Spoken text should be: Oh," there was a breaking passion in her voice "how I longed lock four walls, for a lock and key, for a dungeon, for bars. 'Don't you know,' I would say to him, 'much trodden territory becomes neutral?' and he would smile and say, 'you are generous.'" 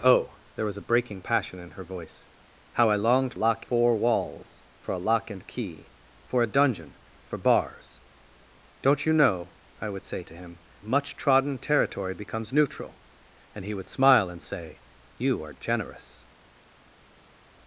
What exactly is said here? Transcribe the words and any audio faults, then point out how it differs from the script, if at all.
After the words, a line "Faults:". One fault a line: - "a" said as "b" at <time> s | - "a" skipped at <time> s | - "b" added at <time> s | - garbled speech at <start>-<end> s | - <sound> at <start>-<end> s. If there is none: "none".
Oh," there was a breaking passion in her voice "how I longed lock four walls, for a lock and key, for a dungeon, for bars. 'Don't you know,' I would say to him, 'much trodden territory becomes neutral?' and he would smile and say, 'you are generous.'"
Faults:
none